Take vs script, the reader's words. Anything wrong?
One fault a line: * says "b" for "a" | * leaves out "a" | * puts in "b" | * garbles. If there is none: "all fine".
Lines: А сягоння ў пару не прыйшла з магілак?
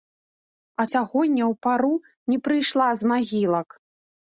all fine